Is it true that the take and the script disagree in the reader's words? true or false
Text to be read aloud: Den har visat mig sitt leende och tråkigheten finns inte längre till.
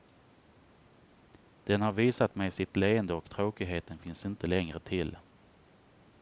false